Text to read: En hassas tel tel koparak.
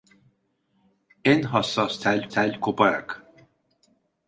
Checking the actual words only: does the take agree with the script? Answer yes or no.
yes